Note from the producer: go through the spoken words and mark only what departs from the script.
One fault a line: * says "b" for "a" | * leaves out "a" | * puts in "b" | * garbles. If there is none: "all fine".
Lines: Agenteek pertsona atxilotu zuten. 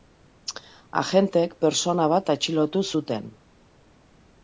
* puts in "bat"